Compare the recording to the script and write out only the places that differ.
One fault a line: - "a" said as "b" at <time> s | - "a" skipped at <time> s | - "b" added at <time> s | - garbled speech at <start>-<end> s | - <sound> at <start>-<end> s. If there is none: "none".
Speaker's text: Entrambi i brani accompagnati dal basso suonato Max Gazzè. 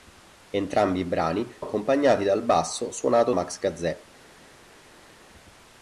none